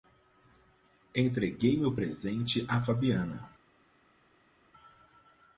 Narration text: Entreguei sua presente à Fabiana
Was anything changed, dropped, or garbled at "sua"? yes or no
yes